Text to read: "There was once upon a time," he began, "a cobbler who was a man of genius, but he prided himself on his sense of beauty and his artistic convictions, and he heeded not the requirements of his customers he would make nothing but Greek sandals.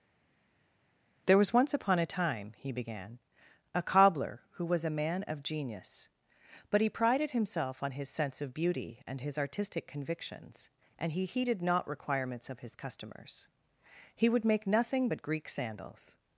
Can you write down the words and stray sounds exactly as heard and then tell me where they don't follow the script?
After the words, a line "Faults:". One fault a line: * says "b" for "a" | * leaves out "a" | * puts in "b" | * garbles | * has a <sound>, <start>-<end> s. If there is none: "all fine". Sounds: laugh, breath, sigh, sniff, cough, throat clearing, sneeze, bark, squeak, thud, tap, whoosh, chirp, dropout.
"There was once upon a time," he began, "a cobbler who was a man of genius, but he prided himself on his sense of beauty and his artistic convictions, and he heeded not requirements of his customers he would make nothing but Greek sandals.
Faults:
* leaves out "the"